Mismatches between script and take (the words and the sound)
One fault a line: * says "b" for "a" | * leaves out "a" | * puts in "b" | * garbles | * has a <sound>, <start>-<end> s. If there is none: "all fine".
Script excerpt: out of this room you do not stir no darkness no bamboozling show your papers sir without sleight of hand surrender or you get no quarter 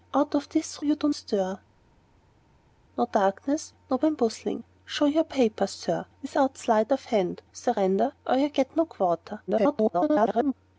* leaves out "room"
* leaves out "not"
* garbles